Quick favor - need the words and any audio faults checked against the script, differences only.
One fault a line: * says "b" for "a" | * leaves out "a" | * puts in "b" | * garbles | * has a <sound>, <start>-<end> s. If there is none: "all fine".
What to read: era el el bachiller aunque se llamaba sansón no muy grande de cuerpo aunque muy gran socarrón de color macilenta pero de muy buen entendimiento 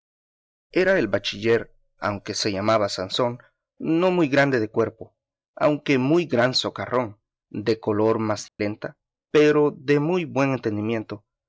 * leaves out "el"
* has a dropout, 8.5-8.6 s